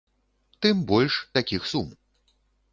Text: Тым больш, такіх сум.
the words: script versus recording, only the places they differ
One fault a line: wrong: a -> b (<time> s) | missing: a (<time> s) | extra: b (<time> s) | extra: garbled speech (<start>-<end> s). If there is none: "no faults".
no faults